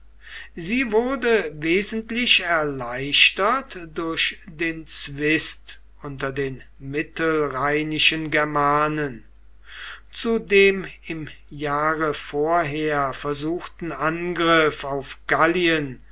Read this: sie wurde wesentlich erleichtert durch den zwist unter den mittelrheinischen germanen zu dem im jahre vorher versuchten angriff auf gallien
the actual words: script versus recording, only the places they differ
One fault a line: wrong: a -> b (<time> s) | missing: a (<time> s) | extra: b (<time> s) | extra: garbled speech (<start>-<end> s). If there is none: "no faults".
no faults